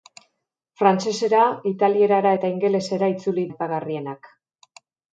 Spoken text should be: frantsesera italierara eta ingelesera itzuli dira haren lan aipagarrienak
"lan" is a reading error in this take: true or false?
true